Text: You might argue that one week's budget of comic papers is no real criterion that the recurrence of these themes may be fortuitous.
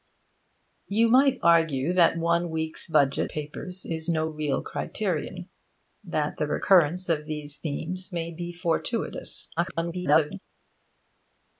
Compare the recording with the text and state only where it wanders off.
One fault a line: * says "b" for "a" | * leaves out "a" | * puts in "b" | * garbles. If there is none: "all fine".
* leaves out "of comic"
* garbles